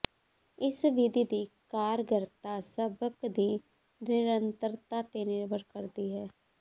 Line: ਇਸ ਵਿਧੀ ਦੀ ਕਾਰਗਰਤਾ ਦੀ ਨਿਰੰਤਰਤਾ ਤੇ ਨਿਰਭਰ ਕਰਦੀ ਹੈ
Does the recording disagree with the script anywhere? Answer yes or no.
yes